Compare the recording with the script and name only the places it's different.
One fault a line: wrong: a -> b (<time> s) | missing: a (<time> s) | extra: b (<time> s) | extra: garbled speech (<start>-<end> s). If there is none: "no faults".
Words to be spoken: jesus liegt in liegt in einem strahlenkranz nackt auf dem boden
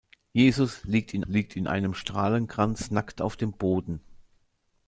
no faults